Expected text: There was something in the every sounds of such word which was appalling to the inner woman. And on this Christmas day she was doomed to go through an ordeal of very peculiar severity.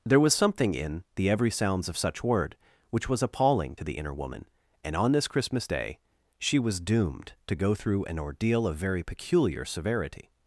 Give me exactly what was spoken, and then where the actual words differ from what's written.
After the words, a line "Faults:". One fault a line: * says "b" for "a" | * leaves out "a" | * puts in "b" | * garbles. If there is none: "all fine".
There was something in the every sounds of such word which was appalling to the inner woman. And on this Christmas day she was doomed to go through an ordeal of very peculiar severity.
Faults:
all fine